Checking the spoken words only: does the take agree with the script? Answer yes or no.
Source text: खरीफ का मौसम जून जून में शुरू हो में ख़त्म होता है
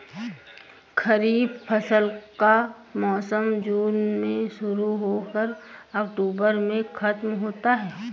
no